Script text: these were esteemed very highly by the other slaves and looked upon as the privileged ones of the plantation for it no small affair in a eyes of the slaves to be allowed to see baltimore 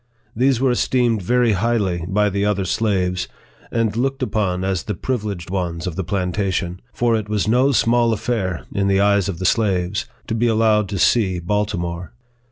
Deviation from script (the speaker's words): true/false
true